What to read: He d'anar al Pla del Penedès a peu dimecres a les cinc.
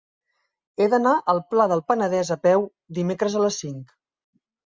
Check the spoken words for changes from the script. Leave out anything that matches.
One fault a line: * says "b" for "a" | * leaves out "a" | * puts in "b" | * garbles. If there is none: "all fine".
all fine